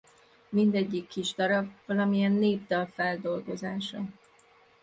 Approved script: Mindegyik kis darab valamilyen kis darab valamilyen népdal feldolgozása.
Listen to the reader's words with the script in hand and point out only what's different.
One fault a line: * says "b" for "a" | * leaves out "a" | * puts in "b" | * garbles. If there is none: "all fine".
* leaves out "kis darab valamilyen"